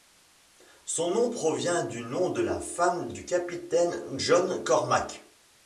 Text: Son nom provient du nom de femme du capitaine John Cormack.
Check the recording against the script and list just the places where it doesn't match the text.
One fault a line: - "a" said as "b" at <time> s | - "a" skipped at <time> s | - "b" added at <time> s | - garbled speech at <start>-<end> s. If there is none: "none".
- "la" added at 2.4 s